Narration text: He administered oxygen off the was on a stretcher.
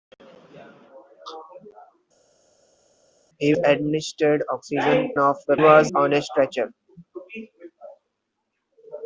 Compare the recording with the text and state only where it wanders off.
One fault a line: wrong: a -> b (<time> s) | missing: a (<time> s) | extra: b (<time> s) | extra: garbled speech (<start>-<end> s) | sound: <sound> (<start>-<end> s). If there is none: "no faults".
no faults